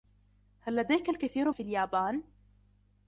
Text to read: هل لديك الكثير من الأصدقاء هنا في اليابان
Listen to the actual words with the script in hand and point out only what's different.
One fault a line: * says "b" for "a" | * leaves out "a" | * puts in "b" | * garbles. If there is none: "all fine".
* leaves out "من الأصدقاء هنا"